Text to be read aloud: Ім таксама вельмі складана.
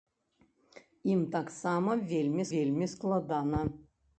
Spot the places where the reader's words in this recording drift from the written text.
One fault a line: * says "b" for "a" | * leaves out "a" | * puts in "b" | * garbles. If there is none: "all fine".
* puts in "вельмі"